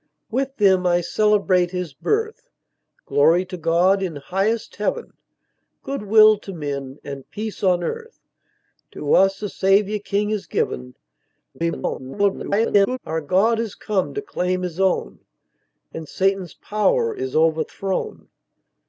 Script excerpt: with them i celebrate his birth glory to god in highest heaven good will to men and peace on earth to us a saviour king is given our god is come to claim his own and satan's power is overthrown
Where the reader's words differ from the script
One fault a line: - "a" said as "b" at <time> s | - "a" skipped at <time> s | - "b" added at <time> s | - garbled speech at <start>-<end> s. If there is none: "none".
- garbled speech at 11.5-13.0 s